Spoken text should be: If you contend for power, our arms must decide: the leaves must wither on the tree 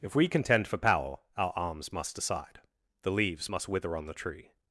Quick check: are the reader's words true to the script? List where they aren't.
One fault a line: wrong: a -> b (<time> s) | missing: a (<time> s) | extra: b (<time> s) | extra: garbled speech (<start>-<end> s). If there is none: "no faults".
wrong: you -> we (0.1 s)